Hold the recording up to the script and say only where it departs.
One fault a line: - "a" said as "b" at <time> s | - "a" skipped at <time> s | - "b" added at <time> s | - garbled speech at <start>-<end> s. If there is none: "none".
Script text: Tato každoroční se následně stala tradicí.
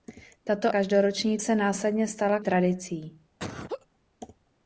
none